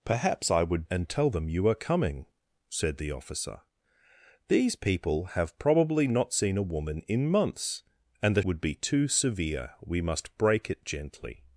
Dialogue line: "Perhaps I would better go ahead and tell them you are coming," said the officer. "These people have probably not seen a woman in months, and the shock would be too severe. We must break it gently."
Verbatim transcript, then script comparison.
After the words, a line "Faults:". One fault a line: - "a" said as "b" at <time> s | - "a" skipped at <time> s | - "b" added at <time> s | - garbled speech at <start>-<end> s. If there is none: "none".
"Perhaps I would and tell them you are coming," said the officer. "These people have probably not seen a woman in months, and the would be too severe. We must break it gently."
Faults:
- "better go ahead" skipped at 0.9 s
- "shock" skipped at 8.4 s